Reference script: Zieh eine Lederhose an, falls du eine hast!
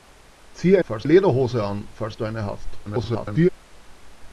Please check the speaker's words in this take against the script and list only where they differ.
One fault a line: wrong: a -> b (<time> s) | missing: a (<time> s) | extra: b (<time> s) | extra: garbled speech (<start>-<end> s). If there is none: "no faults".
wrong: eine -> falls (0.8 s)
extra: garbled speech (2.8-3.5 s)